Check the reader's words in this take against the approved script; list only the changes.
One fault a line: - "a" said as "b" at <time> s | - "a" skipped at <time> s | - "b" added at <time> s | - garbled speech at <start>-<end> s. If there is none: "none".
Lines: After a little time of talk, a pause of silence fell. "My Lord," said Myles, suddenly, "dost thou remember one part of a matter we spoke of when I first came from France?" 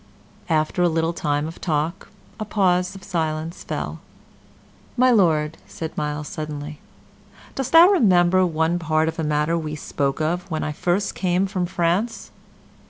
none